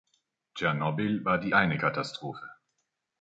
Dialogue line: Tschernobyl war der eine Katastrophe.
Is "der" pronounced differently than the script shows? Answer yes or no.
yes